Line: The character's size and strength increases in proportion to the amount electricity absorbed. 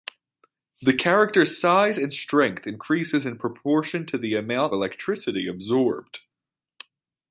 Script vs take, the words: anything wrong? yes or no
no